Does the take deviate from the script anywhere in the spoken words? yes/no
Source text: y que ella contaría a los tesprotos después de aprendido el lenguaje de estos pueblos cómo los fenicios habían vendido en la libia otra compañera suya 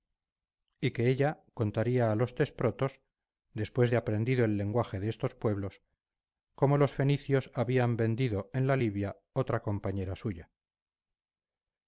no